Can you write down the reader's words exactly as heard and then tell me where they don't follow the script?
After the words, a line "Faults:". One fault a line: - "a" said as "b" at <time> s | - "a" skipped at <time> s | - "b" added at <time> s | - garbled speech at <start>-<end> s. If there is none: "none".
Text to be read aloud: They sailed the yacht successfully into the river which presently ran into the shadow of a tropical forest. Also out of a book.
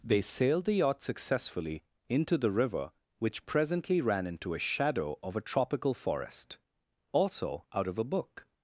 They sailed the yacht successfully into the river which presently ran into a shadow of a tropical forest. Also out of a book.
Faults:
- "the" said as "a" at 4.5 s